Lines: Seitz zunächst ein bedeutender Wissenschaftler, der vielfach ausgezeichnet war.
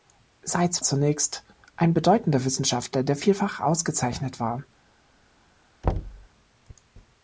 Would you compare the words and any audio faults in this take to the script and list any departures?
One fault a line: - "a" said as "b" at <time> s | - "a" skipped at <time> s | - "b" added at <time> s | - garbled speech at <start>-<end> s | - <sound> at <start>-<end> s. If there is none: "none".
- thud at 5.8-6.3 s